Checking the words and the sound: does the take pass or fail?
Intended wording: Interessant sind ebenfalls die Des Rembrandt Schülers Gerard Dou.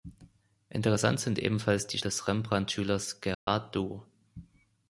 fail